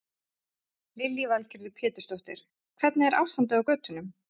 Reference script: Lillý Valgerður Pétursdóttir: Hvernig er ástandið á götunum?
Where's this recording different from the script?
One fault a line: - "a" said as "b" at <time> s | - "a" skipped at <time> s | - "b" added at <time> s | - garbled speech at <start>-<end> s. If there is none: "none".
none